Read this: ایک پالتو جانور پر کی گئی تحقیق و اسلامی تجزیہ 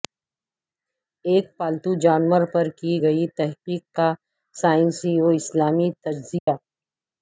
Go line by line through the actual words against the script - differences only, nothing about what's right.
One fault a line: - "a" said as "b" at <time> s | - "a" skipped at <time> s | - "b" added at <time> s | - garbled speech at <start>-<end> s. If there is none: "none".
- "کا سائنسی" added at 4.0 s